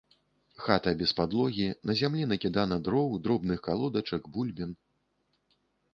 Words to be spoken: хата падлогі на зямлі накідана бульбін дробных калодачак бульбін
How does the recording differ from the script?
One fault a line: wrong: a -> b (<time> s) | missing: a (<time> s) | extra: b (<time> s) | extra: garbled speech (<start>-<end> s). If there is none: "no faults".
extra: без (1.0 s)
wrong: бульбін -> дроў (2.9 s)